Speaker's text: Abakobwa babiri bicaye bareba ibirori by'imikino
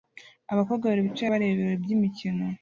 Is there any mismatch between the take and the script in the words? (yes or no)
no